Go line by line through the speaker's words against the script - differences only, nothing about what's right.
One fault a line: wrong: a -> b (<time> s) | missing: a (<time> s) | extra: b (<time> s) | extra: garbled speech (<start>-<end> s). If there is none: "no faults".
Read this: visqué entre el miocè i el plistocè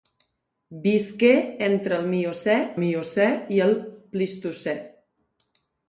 extra: miocè (2.8 s)